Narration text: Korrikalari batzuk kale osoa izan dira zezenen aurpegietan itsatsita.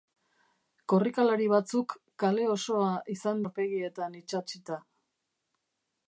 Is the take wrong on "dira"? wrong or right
wrong